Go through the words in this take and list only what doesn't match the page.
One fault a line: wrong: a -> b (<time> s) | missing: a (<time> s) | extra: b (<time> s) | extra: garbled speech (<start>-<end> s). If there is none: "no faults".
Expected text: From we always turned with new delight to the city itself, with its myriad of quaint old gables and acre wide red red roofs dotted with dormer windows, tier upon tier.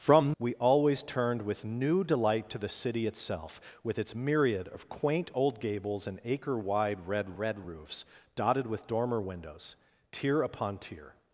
no faults